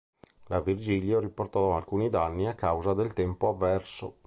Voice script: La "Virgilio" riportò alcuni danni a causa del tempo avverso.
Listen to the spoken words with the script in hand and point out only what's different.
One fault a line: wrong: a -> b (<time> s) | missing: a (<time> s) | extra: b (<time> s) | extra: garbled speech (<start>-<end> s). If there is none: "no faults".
no faults